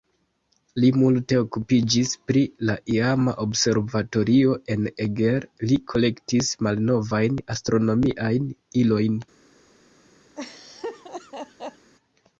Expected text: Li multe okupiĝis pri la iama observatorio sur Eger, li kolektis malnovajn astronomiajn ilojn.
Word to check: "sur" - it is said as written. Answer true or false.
false